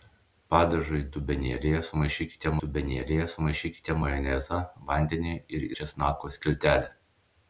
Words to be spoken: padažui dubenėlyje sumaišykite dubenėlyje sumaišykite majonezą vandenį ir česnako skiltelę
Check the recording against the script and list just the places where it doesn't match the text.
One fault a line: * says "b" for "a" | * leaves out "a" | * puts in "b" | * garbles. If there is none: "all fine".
all fine